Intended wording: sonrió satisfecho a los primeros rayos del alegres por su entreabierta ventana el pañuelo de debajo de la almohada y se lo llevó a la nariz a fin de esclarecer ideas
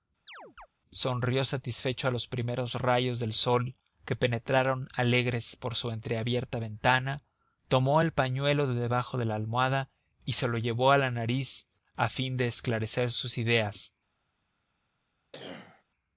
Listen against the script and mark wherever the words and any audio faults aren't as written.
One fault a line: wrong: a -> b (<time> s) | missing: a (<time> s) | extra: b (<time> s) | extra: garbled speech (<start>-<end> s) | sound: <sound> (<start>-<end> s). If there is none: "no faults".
sound: chirp (0.3-0.7 s)
extra: sol que penetraron (3.3 s)
extra: tomó (7.7 s)
extra: sus (13.1 s)
sound: cough (15.3-15.8 s)